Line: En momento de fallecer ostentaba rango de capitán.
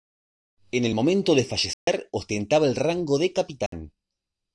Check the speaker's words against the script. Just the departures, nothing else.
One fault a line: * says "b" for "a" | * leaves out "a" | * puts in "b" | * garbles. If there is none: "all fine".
* puts in "el"
* puts in "el"